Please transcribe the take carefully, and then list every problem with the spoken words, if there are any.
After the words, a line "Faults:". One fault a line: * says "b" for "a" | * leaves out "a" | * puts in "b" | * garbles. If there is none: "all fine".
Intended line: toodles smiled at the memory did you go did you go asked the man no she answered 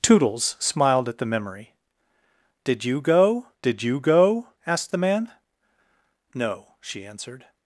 toodles smiled at the memory did you go did you go asked the man no she answered
Faults:
all fine